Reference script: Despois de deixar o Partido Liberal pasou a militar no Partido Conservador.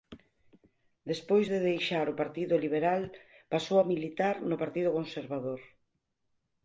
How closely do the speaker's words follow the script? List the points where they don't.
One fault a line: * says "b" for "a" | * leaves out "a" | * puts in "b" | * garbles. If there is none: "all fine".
all fine